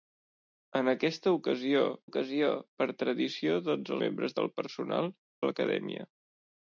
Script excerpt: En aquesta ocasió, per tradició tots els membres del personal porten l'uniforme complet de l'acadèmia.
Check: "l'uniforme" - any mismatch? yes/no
yes